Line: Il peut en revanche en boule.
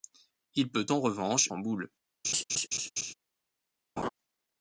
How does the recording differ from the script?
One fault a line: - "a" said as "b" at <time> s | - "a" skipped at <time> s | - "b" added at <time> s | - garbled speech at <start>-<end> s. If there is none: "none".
none